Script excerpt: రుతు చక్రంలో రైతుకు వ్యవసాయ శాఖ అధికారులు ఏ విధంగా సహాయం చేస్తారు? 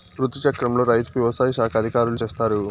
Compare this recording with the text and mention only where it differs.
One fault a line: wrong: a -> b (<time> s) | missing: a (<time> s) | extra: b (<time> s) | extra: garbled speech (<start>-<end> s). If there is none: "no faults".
missing: ఏ విధంగా సహాయం (2.2 s)